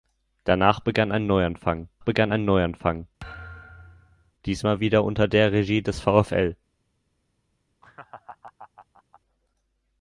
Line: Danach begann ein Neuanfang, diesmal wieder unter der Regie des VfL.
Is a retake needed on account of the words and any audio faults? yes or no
yes